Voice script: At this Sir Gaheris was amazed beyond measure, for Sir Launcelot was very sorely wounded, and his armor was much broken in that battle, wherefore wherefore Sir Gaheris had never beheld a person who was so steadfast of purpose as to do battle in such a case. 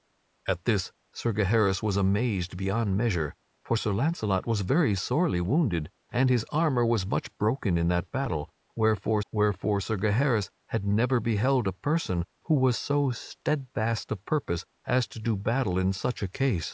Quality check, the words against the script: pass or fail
pass